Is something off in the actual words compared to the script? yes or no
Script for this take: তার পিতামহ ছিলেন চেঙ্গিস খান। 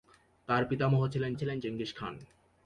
yes